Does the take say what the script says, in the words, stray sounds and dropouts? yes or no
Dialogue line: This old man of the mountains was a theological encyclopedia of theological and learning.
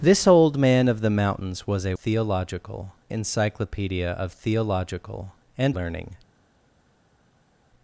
yes